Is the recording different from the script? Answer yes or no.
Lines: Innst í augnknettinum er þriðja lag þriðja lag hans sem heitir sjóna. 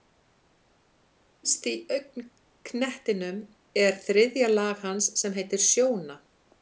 yes